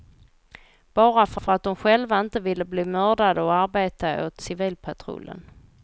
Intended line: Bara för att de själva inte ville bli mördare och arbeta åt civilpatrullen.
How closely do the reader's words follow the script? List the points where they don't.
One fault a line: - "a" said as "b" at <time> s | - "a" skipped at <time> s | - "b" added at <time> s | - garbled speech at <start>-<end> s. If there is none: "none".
- "för" added at 1.4 s